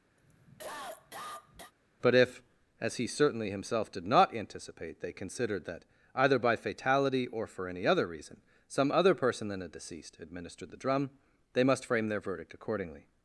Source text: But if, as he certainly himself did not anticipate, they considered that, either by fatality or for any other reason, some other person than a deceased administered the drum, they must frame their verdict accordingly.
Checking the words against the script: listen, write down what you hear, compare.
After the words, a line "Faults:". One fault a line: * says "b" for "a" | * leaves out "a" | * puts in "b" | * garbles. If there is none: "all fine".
But if, as he certainly himself did not anticipate, they considered that, either by fatality or for any other reason, some other person than a deceased administered the drum, they must frame their verdict accordingly.
Faults:
all fine